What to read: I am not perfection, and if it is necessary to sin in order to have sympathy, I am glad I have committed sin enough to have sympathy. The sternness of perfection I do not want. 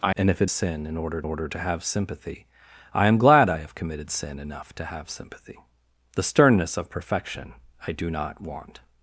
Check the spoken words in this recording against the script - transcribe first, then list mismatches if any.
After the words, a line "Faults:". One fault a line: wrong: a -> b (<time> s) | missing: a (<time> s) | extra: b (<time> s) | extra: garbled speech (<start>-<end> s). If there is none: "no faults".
I and if it sin in order order to have sympathy, I am glad I have committed sin enough to have sympathy. The sternness of perfection I do not want.
Faults:
missing: am not perfection (0.1 s)
missing: is necessary to (0.5 s)
extra: order (1.2 s)